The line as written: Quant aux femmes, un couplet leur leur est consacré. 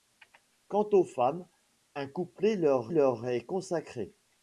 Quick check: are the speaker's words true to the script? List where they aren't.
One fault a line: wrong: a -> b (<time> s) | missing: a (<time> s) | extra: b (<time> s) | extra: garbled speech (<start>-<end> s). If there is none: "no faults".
no faults